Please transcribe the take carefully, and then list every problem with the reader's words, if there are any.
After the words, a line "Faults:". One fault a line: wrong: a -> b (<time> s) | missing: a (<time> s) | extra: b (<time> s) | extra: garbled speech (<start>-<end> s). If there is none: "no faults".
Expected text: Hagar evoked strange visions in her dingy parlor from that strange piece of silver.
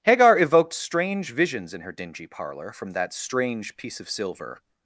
Hagar evoked strange visions in her dingy parlor from that strange piece of silver.
Faults:
no faults